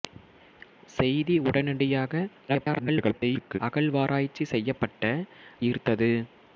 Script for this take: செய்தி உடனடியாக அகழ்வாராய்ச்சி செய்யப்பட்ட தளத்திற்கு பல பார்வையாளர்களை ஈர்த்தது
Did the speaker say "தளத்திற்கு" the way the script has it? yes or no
no